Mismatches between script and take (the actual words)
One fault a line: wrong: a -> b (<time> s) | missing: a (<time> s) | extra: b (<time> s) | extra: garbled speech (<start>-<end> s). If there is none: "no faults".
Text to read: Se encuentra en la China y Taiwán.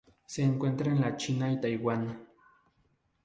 no faults